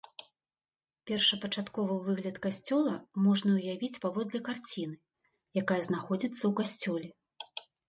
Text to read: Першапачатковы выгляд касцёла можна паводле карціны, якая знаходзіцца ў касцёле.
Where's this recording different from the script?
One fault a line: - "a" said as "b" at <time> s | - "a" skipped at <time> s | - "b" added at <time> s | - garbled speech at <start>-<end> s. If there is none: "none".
- "ўявіць" added at 3.6 s